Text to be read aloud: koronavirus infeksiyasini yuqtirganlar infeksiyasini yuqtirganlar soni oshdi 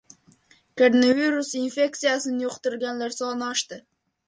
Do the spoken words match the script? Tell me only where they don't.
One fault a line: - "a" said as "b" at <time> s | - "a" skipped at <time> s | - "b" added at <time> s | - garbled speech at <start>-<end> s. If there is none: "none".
- "infeksiyasini yuqtirganlar" skipped at 3.2 s